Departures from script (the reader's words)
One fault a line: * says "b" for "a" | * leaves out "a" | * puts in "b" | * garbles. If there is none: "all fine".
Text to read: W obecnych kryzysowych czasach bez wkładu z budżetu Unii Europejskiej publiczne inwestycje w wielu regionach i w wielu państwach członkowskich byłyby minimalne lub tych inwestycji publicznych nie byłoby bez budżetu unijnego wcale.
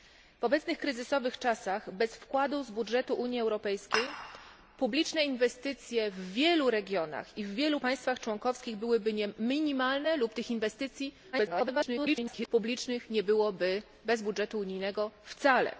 * garbles